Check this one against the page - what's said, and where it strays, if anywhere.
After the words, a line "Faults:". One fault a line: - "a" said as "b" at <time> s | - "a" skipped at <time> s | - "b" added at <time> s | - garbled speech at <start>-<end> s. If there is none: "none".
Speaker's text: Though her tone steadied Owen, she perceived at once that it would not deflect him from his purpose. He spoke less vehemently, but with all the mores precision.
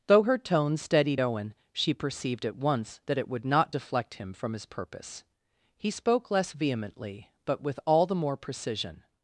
Though her tone steadied Owen, she perceived at once that it would not deflect him from his purpose. He spoke less vehemently, but with all the more precision.
Faults:
- "mores" said as "more" at 8.1 s